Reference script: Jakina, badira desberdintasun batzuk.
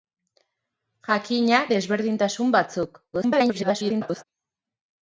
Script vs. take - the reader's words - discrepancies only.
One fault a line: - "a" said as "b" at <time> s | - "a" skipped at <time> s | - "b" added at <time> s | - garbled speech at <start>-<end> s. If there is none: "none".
- "badira" skipped at 1.6 s
- garbled speech at 3.1-4.2 s